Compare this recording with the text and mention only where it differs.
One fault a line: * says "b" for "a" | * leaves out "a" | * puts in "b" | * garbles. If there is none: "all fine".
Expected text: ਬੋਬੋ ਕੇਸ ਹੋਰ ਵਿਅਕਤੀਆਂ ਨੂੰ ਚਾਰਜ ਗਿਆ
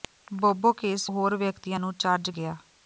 all fine